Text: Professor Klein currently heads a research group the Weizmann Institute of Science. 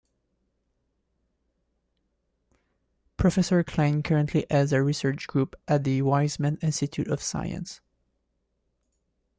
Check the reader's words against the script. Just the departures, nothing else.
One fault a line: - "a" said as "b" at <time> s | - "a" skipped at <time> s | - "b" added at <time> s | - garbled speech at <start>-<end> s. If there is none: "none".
- "at" added at 5.7 s